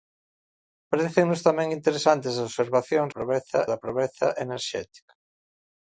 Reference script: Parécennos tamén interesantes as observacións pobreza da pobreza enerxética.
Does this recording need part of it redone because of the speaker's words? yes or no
no